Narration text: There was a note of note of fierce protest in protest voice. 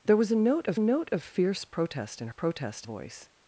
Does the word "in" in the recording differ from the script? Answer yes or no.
no